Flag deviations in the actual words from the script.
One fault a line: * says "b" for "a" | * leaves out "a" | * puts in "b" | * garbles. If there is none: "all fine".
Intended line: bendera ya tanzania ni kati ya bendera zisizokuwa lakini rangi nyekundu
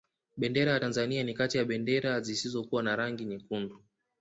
* says "na" for "lakini"